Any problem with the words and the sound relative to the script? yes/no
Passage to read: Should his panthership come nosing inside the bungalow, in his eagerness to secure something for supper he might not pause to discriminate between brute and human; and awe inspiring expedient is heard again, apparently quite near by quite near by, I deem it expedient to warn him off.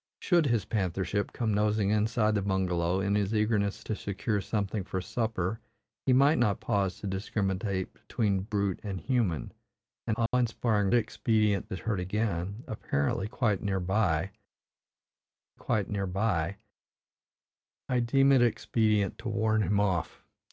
yes